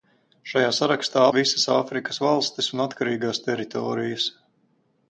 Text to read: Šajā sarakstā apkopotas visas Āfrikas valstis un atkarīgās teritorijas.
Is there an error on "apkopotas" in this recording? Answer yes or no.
yes